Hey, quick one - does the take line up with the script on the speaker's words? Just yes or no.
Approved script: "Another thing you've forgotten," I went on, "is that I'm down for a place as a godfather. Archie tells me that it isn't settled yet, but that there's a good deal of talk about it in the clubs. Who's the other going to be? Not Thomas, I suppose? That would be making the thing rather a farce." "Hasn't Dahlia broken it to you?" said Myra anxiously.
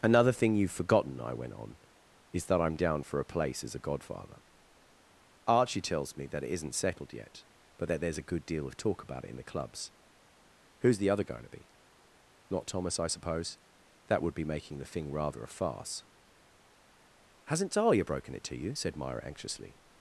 yes